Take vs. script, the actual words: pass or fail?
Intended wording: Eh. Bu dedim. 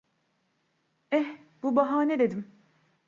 fail